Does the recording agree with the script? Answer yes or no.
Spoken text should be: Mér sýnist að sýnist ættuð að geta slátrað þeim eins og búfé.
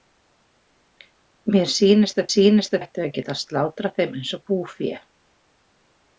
yes